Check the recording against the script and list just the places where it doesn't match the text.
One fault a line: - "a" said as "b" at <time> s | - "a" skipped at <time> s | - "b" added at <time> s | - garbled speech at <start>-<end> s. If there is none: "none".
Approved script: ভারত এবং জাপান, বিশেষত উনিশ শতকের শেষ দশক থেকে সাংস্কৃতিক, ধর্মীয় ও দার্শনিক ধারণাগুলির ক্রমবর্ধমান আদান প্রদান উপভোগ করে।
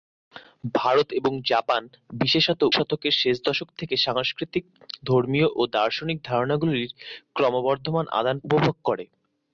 - "উনিশ" skipped at 2.6 s
- "প্রদান" skipped at 8.4 s